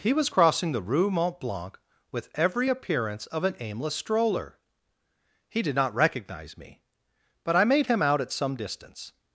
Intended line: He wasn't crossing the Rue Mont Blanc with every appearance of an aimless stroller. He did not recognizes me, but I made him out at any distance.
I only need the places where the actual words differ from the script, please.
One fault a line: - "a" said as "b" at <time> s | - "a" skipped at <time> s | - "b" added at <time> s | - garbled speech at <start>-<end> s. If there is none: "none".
- "wasn't" said as "was" at 0.1 s
- "recognizes" said as "recognize" at 5.9 s
- "any" said as "some" at 8.3 s